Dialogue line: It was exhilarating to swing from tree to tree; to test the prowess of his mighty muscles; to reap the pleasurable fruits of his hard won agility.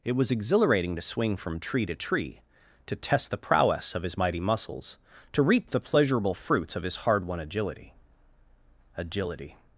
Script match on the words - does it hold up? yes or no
no